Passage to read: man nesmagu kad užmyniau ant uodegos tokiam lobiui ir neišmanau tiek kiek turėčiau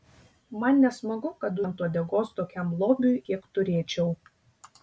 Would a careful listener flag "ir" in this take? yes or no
yes